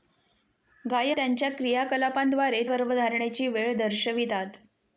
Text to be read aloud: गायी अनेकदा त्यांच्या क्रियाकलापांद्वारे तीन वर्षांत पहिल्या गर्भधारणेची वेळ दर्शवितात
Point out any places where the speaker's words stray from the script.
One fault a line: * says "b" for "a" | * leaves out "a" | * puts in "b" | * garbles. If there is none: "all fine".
* leaves out "अनेकदा"
* leaves out "तीन वर्षांत पहिल्या"